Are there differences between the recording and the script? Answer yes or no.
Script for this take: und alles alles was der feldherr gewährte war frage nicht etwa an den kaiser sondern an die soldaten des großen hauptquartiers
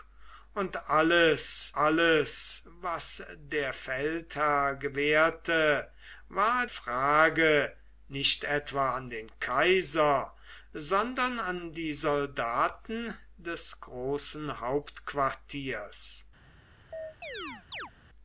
no